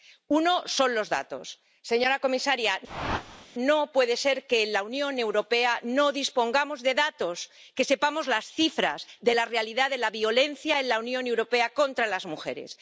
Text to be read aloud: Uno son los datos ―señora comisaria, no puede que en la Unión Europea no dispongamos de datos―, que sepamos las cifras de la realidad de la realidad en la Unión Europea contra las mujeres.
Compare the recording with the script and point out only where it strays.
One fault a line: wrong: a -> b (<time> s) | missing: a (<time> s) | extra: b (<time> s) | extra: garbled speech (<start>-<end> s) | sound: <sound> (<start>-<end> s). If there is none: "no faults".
sound: whoosh (2.9-3.5 s)
extra: ser (4.2 s)
wrong: realidad -> violencia (10.2 s)